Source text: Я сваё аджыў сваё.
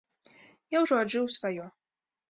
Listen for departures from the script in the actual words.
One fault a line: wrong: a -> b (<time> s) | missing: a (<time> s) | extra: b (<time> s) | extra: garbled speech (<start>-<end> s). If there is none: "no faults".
wrong: сваё -> ўжо (0.8 s)